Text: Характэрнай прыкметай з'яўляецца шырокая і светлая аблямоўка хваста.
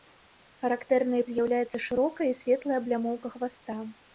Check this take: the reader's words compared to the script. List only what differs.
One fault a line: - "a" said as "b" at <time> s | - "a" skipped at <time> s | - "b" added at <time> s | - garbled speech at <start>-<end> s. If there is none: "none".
- "прыкметай" skipped at 1.2 s